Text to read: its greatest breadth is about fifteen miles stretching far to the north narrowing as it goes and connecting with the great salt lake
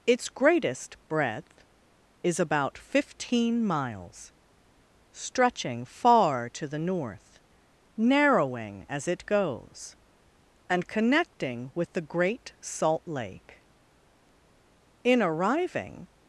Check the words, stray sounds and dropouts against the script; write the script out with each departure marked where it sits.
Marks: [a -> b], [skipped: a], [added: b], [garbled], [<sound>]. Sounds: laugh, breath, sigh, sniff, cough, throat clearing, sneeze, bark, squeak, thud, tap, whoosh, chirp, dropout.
its greatest breadth is about fifteen miles stretching far to the north narrowing as it goes and connecting with the great salt lake [added: in arriving]